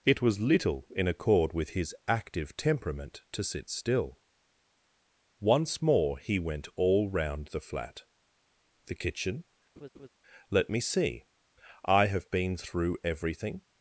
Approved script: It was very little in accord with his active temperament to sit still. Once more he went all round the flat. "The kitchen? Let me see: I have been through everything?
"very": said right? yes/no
no